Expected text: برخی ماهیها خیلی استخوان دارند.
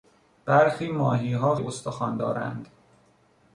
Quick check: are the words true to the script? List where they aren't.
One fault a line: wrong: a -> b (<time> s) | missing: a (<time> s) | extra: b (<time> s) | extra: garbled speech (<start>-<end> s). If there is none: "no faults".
missing: خیلی (1.6 s)